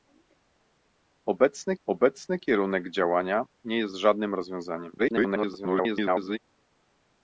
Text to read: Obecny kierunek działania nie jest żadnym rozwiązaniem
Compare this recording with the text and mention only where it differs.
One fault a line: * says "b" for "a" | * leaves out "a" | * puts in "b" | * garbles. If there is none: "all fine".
* puts in "obecny"
* garbles